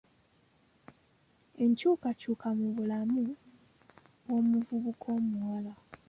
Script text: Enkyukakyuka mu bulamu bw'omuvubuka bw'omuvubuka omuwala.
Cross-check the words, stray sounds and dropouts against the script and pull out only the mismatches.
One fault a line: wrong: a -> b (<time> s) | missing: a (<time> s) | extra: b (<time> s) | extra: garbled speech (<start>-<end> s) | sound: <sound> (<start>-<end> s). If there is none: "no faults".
missing: bw'omuvubuka (5.1 s)